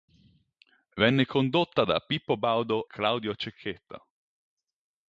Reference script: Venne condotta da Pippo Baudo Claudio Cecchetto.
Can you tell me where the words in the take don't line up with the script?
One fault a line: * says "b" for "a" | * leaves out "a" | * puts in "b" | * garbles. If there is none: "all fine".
all fine